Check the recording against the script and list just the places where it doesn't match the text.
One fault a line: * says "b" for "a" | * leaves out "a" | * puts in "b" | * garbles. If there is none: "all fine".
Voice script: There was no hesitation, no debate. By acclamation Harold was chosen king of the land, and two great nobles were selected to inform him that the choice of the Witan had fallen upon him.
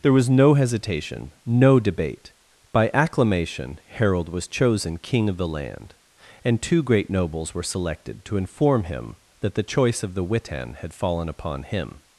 all fine